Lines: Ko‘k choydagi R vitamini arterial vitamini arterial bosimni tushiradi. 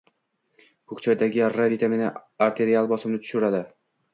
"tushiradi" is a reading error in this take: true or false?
false